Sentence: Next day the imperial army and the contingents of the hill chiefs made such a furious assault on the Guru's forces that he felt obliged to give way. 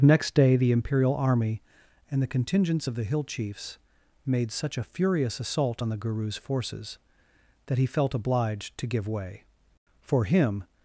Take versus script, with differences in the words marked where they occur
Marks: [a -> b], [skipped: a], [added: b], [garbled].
Next day the imperial army and the contingents of the hill chiefs made such a furious assault on the Guru's forces that he felt obliged to give way. [added: For him]